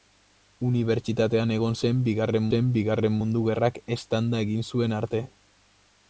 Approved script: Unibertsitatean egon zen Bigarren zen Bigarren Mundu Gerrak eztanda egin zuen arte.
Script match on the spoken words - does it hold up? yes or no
yes